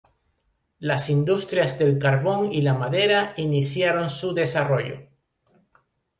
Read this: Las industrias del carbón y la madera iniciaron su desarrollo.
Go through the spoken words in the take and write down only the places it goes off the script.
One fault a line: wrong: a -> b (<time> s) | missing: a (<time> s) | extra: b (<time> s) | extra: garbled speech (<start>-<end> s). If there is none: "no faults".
no faults